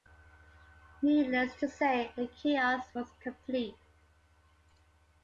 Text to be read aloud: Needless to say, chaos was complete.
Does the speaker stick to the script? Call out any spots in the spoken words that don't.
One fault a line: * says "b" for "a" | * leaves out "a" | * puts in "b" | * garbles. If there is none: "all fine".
* puts in "the"